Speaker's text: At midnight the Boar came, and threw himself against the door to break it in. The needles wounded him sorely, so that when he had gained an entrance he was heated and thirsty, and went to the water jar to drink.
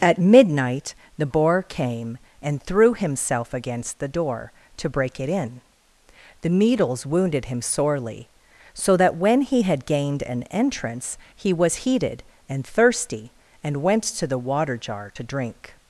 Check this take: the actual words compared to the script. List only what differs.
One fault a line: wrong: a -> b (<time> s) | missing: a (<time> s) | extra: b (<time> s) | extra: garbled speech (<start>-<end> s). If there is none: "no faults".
no faults